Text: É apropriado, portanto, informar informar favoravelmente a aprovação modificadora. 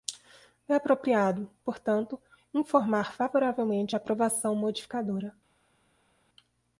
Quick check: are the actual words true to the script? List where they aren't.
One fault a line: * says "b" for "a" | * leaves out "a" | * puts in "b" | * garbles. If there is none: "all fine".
* leaves out "informar"